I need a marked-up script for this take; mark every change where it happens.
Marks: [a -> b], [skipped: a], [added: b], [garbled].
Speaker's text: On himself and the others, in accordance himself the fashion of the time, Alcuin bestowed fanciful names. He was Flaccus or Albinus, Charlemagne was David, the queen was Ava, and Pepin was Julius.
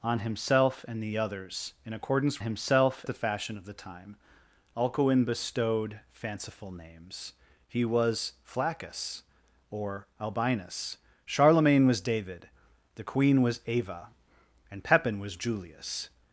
On himself and the others, in accordance himself the fashion of the time, Alcuin bestowed fanciful names. He was Flaccus or Albinus, Charlemagne was David, the queen was Ava, and Pepin was Julius.